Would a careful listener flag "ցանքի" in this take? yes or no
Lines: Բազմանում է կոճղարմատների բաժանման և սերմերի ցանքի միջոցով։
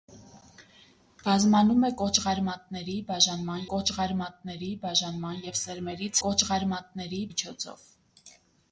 yes